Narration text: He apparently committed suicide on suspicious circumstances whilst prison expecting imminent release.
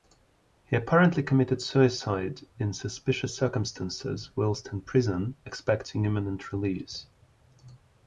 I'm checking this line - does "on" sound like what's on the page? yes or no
no